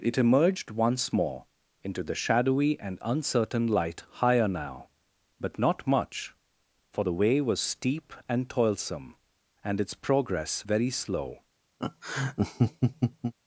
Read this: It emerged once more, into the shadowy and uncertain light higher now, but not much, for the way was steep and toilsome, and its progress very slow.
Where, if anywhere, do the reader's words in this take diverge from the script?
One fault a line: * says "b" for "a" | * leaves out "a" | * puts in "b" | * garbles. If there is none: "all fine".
all fine